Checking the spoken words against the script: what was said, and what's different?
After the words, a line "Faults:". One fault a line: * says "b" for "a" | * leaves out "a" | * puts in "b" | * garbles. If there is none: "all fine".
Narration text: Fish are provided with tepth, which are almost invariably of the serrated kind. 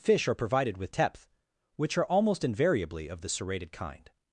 Fish are provided with tepth, which are almost invariably of the serrated kind.
Faults:
all fine